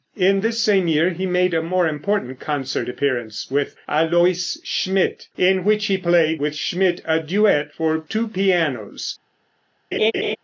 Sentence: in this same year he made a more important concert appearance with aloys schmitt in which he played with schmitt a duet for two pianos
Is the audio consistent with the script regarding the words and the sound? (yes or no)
no